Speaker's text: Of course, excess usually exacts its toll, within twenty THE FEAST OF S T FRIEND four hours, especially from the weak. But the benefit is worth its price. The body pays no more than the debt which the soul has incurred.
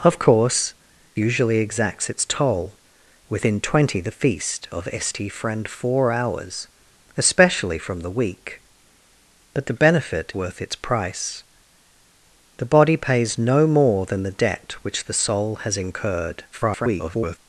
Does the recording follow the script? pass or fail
fail